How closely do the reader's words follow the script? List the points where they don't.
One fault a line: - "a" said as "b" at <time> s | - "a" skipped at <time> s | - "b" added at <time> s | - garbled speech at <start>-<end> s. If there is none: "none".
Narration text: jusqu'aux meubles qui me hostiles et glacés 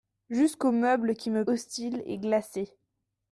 none